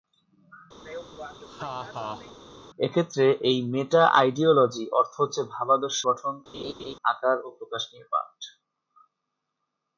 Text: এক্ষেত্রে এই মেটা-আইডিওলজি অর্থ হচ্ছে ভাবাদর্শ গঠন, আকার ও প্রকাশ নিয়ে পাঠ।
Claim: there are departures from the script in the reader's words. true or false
false